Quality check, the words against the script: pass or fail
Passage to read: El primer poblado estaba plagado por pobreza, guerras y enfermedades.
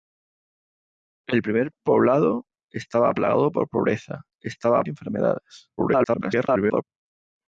fail